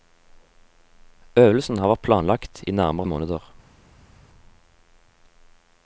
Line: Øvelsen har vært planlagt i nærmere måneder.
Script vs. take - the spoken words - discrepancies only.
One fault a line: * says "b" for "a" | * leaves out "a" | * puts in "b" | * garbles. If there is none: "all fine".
all fine